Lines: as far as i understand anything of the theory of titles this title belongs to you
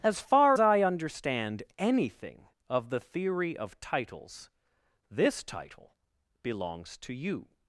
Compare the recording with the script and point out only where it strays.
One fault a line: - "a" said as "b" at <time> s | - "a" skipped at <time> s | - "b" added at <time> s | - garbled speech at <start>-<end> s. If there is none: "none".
- "as" skipped at 0.6 s